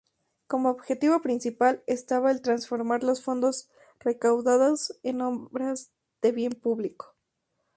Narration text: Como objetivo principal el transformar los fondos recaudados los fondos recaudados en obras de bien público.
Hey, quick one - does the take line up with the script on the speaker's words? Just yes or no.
no